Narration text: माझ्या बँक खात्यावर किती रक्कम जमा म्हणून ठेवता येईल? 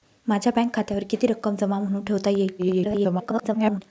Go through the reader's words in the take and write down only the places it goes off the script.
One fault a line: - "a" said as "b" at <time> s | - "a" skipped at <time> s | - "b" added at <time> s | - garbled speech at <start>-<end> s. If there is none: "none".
- garbled speech at 2.6-3.8 s